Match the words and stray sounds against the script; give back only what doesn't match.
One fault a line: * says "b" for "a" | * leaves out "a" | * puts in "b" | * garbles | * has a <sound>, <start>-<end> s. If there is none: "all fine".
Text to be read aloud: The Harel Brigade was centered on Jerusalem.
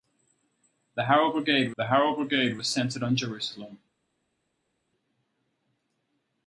* puts in "the Harel Brigade"